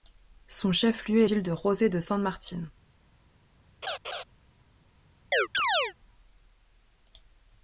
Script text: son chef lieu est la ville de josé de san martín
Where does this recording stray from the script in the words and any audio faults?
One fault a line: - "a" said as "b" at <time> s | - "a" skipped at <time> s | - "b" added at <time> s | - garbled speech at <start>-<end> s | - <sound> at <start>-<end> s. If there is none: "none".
- "la" skipped at 1.3 s
- laugh at 3.8-4.2 s
- chirp at 5.3-5.9 s